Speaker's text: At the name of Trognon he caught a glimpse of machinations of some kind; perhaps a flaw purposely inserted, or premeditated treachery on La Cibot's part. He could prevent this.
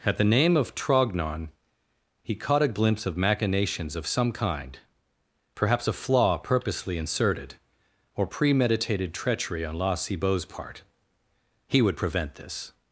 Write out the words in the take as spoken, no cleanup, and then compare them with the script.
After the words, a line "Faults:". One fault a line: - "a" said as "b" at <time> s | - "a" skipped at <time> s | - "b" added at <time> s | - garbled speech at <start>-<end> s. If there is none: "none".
At the name of Trognon he caught a glimpse of machinations of some kind; perhaps a flaw purposely inserted, or premeditated treachery on La Cibot's part. He would prevent this.
Faults:
- "could" said as "would" at 11.8 s